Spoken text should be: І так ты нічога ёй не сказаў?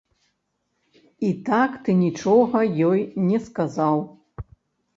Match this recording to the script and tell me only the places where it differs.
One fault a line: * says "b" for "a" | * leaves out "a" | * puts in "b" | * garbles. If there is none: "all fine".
all fine